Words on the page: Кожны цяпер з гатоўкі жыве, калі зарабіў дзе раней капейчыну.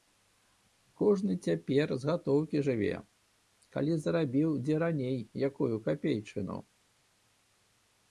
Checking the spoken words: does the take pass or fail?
fail